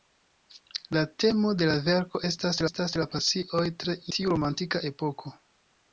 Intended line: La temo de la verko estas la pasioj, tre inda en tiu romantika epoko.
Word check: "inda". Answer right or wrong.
wrong